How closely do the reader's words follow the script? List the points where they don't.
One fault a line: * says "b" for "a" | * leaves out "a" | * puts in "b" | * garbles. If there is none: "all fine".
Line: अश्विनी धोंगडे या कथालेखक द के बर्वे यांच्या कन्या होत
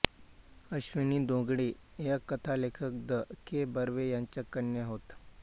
all fine